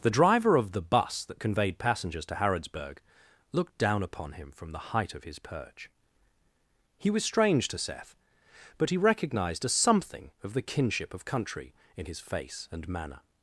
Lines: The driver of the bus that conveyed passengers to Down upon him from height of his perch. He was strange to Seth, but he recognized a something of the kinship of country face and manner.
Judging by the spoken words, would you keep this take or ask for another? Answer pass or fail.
fail